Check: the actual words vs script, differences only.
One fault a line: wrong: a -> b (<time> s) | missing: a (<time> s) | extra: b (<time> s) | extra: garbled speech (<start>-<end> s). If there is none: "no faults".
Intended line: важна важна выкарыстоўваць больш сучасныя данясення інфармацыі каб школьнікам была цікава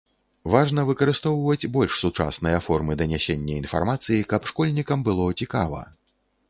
missing: важна (0.8 s)
extra: формы (2.7 s)
wrong: была -> было (5.1 s)